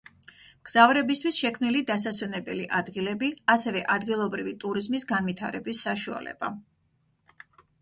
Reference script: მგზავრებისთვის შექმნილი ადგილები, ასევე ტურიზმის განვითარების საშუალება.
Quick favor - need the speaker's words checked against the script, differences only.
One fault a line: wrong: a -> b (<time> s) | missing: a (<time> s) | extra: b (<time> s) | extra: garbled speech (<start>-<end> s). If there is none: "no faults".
extra: დასასვენებელი (1.9 s)
extra: ადგილობრივი (4.0 s)